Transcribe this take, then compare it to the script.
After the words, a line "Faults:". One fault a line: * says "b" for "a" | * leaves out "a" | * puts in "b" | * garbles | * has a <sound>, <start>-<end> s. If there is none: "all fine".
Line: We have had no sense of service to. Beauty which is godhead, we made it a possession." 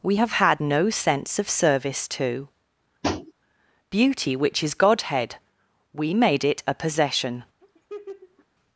We have had no sense of service to. Beauty which is godhead, we made it a possession."
Faults:
* has a tap, 3.0-3.3 s
* has a laugh, 7.6-8.5 s